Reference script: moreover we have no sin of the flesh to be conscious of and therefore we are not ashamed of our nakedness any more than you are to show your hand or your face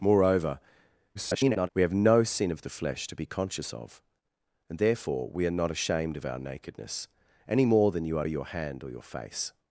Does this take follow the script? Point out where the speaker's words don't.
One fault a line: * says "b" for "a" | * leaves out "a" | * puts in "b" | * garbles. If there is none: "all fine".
* garbles
* leaves out "to show"